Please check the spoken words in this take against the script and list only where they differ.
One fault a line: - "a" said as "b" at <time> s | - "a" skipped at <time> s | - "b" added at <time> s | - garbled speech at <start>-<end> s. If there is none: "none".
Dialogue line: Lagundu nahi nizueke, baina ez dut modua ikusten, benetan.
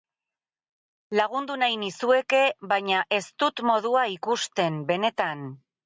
none